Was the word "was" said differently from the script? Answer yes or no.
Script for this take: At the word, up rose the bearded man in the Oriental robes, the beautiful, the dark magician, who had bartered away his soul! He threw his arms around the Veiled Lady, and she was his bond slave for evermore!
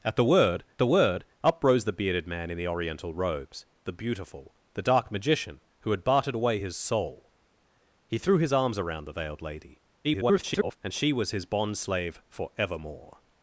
no